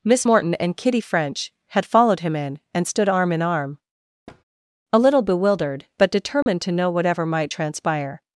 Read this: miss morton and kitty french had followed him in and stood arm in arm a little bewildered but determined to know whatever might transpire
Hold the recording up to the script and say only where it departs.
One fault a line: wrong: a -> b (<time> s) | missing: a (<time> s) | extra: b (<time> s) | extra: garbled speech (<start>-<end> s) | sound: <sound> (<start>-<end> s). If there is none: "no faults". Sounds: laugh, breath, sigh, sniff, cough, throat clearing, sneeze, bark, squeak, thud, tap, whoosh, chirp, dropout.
sound: thud (4.3-4.4 s)
sound: dropout (6.4-6.5 s)